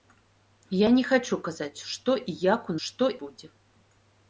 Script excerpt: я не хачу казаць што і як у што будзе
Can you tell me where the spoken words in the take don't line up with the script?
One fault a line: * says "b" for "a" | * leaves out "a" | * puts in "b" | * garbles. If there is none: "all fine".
all fine